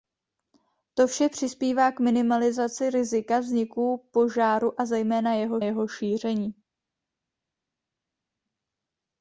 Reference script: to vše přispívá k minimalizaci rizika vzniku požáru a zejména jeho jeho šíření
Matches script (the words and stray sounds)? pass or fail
pass